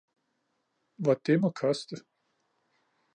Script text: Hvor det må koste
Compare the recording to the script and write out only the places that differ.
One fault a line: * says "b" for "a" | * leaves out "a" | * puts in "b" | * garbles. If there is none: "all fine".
all fine